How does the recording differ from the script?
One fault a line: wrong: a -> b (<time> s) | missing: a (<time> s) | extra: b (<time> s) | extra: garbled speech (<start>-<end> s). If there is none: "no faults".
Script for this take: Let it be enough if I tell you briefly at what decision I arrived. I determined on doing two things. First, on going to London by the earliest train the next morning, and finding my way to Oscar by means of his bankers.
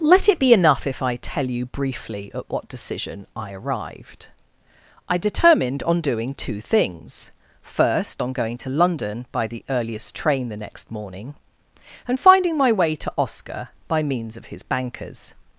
no faults